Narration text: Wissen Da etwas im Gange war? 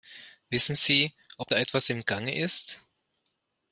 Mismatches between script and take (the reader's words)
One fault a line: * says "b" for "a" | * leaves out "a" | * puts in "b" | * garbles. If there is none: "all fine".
* puts in "Sie ob"
* says "ist" for "war"